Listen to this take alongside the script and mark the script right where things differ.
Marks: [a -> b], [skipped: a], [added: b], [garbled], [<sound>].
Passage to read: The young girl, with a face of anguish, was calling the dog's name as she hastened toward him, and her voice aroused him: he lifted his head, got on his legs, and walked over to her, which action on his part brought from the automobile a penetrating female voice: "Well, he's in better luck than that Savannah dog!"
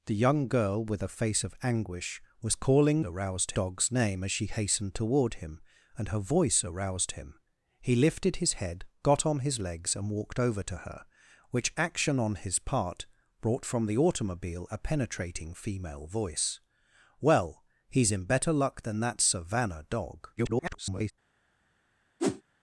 The young girl, with a face of anguish, was calling [the -> aroused] dog's name as she hastened toward him, and her voice aroused him: he lifted his head, got on his legs, and walked over to her, which action on his part brought from the automobile a penetrating female voice: "Well, he's in better luck than that Savannah dog!" [garbled] [whoosh]